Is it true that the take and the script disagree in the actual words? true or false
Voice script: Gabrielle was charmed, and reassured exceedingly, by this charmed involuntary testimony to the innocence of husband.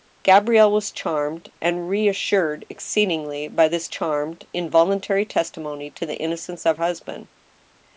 false